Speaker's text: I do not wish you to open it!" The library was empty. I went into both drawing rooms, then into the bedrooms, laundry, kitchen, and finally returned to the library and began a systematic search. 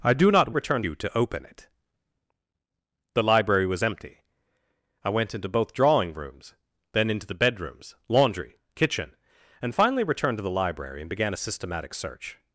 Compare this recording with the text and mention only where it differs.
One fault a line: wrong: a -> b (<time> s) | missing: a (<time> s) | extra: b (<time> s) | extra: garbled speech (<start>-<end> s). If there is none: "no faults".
wrong: wish -> returned (0.5 s)